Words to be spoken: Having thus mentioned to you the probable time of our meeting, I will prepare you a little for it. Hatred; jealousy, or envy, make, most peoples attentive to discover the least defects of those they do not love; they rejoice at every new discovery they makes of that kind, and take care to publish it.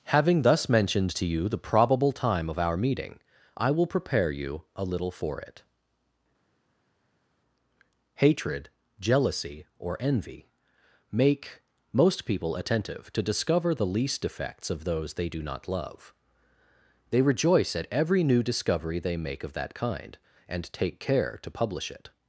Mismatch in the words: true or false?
true